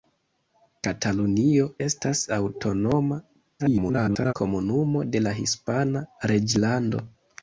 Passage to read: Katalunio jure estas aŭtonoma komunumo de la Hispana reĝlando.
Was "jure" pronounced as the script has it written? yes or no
no